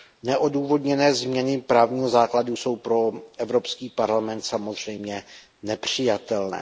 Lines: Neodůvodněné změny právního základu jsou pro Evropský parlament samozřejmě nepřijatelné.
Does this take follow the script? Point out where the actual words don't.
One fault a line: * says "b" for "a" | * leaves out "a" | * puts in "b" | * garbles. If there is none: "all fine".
all fine